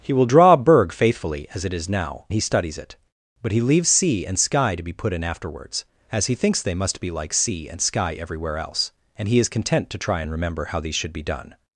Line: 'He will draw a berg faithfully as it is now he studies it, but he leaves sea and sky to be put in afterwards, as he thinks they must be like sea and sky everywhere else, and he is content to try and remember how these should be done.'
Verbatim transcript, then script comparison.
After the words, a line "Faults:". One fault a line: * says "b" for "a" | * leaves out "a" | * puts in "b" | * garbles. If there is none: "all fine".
'He will draw a berg faithfully as it is now he studies it, but he leaves sea and sky to be put in afterwards, as he thinks they must be like sea and sky everywhere else, and he is content to try and remember how these should be done.'
Faults:
all fine